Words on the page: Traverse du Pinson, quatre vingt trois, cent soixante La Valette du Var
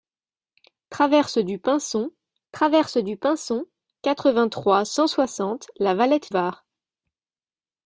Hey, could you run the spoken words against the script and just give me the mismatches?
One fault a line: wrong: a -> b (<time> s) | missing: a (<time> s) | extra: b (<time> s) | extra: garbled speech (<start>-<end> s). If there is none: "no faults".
extra: traverse du Pinson (2.5 s)
missing: du (6.3 s)